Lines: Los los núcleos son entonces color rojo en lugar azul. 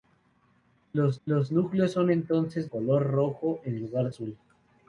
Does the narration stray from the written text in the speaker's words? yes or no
no